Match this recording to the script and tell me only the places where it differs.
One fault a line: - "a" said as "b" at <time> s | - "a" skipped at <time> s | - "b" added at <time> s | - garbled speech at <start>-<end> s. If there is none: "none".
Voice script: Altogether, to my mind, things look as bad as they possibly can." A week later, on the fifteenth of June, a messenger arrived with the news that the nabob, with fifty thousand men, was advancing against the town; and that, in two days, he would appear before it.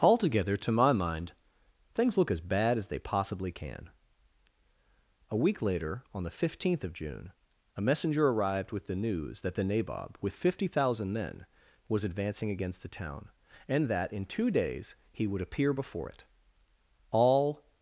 - "All" added at 17.1 s